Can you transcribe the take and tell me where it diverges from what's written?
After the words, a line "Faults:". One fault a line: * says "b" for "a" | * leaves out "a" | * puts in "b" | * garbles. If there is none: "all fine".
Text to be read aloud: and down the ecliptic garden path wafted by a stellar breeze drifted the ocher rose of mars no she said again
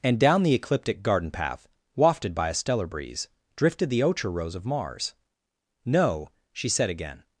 and down the ecliptic garden path wafted by a stellar breeze drifted the ocher rose of mars no she said again
Faults:
all fine